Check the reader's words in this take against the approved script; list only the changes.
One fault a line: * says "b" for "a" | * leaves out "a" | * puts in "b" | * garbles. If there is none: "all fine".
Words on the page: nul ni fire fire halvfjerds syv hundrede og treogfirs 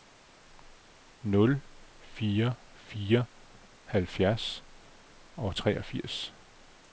* leaves out "ni"
* leaves out "syv hundrede"